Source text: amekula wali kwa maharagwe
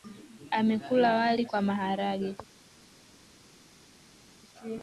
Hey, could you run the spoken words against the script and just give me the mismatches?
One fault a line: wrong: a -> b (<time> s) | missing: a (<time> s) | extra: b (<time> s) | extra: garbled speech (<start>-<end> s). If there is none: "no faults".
no faults